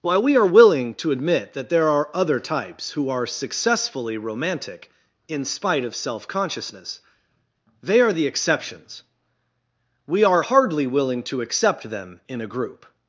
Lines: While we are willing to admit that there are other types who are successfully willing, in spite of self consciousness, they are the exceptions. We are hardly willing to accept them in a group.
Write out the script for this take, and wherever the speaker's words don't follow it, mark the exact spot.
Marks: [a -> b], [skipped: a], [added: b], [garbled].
While we are willing to admit that there are other types who are successfully [willing, -> romantic] in spite of self consciousness, they are the exceptions. We are hardly willing to accept them in a group.